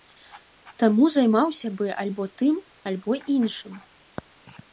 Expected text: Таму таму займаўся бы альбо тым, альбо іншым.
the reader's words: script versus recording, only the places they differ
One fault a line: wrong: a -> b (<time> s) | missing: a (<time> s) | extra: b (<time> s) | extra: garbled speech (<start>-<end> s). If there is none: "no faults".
missing: таму (1.1 s)